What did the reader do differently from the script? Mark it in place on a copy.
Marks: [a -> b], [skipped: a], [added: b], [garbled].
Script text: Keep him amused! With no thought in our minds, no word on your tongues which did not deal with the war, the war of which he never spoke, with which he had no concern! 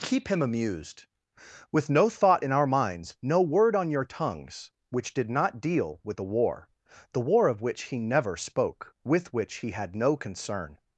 Keep him amused! With no thought in our minds, no word on your tongues which did not deal with the war, the war of which he never spoke, with which he had no concern!